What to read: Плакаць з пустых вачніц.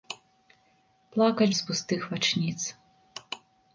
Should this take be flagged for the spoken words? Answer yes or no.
no